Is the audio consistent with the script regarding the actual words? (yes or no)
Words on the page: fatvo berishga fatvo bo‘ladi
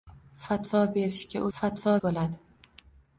yes